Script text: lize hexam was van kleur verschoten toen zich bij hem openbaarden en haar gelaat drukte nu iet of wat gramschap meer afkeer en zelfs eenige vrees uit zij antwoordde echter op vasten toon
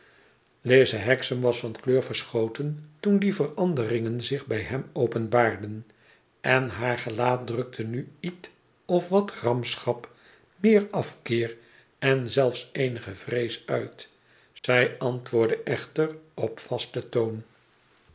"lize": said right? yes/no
yes